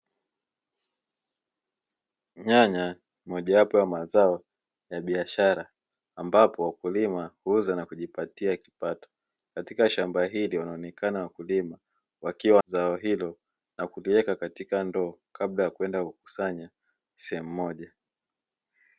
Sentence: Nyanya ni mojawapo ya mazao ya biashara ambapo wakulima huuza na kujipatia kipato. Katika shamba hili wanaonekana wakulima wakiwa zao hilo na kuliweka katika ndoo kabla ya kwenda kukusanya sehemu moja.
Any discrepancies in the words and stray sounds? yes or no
no